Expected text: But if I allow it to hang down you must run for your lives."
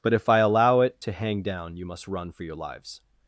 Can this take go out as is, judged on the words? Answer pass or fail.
pass